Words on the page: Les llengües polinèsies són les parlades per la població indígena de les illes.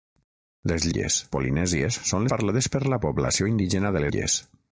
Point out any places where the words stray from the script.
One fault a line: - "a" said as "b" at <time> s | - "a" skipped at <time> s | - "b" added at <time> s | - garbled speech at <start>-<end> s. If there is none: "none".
- "llengües" said as "illes" at 0.9 s
- "les" skipped at 2.3 s
- "les" skipped at 4.1 s